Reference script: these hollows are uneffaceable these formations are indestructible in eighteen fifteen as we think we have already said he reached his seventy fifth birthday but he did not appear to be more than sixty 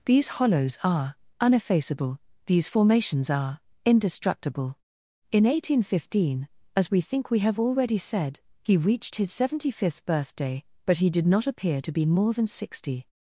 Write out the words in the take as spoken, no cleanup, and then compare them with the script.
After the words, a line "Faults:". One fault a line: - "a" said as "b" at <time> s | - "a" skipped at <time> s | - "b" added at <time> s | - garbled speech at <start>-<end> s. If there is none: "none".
these hollows are uneffaceable these formations are indestructible in eighteen fifteen as we think we have already said he reached his seventy fifth birthday but he did not appear to be more than sixty
Faults:
none